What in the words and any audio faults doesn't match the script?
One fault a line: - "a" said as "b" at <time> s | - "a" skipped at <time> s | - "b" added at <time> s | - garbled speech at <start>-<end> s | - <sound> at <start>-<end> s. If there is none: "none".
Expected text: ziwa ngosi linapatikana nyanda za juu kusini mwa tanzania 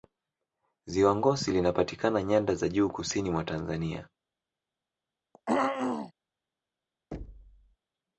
- throat clearing at 5.3-6.1 s
- thud at 7.1-7.8 s